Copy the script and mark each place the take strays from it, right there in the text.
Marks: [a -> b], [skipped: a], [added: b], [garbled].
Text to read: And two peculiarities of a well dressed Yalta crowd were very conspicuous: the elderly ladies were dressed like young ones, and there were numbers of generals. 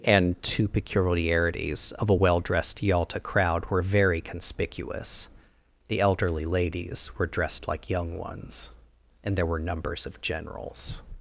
And two peculiarities of a well dressed Yalta crowd were very conspicuous: the elderly ladies were dressed like young ones, and there were numbers of generals.